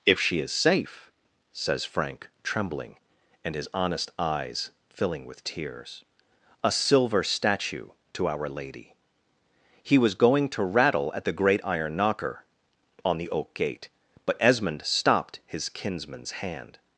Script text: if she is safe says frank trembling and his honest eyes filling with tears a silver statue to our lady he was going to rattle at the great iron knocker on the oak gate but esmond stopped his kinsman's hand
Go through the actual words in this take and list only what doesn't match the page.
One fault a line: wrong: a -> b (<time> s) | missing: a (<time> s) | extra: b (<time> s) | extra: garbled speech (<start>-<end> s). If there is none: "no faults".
no faults